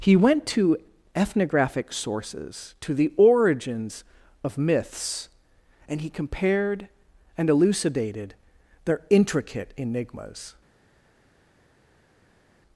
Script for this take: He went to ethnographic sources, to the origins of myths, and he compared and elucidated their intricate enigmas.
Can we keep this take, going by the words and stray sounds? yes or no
yes